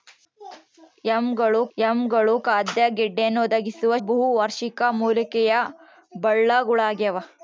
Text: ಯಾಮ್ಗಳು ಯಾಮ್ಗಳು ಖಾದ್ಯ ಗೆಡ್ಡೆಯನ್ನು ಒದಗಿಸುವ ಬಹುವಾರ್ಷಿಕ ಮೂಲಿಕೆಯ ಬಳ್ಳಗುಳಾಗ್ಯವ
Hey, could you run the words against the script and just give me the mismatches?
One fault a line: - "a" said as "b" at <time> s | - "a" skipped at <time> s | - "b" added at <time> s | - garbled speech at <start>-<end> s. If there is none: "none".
none